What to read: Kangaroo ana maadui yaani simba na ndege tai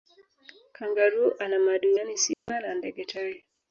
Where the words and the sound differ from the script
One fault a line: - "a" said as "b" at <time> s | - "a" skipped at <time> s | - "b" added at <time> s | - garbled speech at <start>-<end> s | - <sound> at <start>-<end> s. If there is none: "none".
- dropout at 2.3-2.5 s